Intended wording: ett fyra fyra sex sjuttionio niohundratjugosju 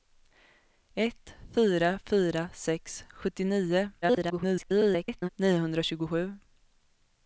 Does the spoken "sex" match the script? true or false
true